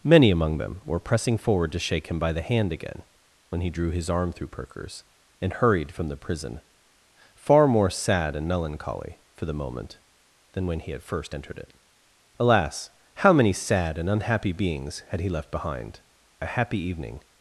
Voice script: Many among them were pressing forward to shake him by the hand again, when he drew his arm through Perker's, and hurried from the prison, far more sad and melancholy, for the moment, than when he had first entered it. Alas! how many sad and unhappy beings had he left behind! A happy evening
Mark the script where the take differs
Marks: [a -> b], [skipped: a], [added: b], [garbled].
Many among them were pressing forward to shake him by the hand again, when he drew his arm through Perker's, and hurried from the prison, far more sad and melancholy, for the moment, than when he had first entered it. Alas! how many sad and unhappy beings had he left behind! A happy evening